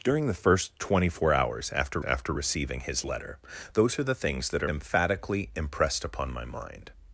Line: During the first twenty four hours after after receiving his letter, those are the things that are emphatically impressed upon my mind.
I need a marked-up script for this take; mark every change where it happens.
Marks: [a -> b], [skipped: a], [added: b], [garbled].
During the first twenty four hours after after receiving his letter, those are the things that are emphatically impressed upon my mind.